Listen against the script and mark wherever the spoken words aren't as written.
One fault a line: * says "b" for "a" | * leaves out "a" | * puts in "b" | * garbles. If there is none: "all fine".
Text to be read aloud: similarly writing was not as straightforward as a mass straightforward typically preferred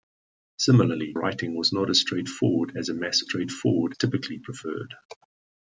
all fine